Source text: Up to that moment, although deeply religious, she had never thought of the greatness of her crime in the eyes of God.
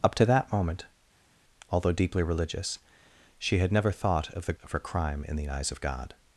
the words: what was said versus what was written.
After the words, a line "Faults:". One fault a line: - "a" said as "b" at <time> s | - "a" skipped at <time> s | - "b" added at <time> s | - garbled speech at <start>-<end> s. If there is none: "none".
Up to that moment, although deeply religious, she had never thought of the of her crime in the eyes of God.
Faults:
- "greatness" skipped at 4.5 s